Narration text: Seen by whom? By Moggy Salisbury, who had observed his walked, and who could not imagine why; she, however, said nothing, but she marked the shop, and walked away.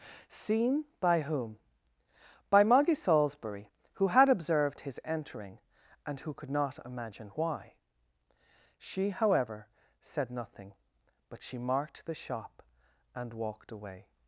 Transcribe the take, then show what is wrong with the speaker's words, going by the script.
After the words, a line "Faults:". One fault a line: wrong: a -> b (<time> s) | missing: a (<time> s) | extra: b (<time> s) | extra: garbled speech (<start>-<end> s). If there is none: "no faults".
Seen by whom? By Moggy Salisbury, who had observed his entering, and who could not imagine why; she, however, said nothing, but she marked the shop, and walked away.
Faults:
wrong: walked -> entering (5.0 s)